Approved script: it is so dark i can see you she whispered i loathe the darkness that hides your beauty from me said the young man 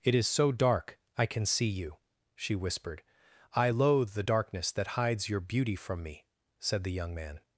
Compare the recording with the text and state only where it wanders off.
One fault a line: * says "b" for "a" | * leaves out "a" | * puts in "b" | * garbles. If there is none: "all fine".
all fine